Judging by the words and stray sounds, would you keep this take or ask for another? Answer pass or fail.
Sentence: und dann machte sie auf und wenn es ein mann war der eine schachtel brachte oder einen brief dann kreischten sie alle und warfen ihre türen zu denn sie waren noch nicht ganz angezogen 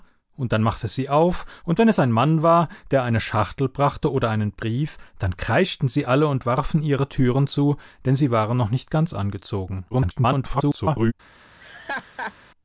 fail